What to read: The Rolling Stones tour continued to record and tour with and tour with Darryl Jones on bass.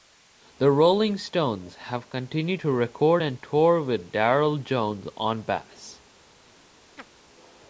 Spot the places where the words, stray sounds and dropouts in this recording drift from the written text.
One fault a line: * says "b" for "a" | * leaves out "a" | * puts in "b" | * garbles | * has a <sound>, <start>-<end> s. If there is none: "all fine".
* says "have" for "tour"
* leaves out "and tour with"
* has a chirp, 7.0-7.1 s